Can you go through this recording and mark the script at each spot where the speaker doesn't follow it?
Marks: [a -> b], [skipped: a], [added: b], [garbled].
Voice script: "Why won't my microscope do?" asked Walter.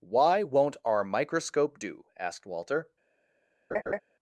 "Why won't [my -> our] microscope do?" asked Walter.